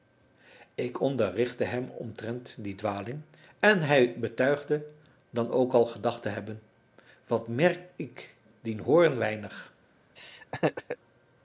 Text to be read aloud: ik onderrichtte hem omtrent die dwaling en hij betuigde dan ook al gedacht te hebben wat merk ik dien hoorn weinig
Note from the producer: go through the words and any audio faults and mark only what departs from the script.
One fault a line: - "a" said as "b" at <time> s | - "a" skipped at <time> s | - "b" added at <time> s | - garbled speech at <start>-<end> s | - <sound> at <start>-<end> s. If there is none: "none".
- laugh at 10.2-11.0 s